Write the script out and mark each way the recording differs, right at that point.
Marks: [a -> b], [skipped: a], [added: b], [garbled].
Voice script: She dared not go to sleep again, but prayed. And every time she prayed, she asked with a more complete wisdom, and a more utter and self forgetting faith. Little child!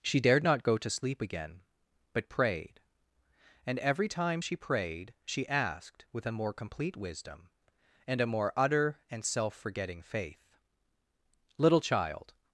She dared not go to sleep again, but prayed. And every time she prayed, she asked with a more complete wisdom, and a more utter and self forgetting faith. Little child!